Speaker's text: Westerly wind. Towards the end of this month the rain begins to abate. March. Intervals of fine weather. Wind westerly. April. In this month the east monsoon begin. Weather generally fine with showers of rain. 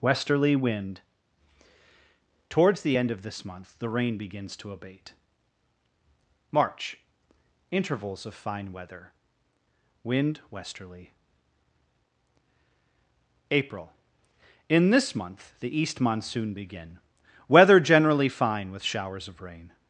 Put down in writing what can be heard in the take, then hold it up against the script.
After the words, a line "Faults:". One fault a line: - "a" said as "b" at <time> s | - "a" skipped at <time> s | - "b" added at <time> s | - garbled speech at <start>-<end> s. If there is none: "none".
Westerly wind. Towards the end of this month the rain begins to abate. March. Intervals of fine weather. Wind westerly. April. In this month the east monsoon begin. Weather generally fine with showers of rain.
Faults:
none